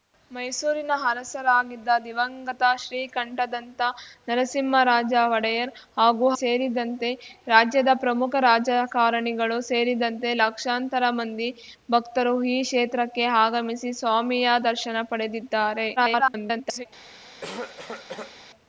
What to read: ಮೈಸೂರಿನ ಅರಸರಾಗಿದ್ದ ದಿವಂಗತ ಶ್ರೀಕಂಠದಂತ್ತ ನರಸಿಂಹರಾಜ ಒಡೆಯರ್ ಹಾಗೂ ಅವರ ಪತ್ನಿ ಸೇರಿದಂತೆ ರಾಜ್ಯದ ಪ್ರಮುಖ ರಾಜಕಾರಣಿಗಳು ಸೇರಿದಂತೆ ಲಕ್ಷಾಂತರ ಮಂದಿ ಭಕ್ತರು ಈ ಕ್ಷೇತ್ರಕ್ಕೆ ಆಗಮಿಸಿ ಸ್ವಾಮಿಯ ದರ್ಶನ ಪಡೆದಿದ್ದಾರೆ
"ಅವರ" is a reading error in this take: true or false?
true